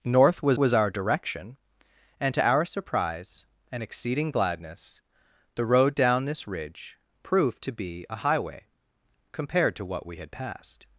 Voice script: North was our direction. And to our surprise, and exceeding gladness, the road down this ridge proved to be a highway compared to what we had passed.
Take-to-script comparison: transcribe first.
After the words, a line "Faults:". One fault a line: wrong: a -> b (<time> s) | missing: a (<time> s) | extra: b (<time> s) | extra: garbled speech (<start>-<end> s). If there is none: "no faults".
North was was our direction. And to our surprise, and exceeding gladness, the road down this ridge proved to be a highway compared to what we had passed.
Faults:
extra: was (0.6 s)